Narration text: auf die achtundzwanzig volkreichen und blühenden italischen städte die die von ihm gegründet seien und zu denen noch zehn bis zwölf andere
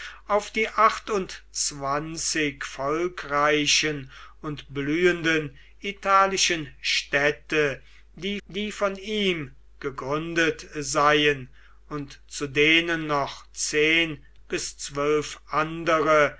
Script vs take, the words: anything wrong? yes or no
no